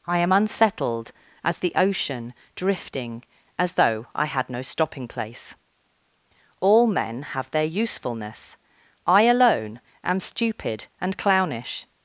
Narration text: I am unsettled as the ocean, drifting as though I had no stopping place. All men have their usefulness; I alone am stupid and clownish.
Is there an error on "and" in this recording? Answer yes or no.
no